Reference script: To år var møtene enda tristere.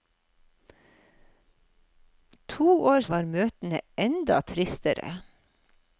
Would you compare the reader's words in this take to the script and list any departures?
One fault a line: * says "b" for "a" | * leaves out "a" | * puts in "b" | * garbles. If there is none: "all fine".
all fine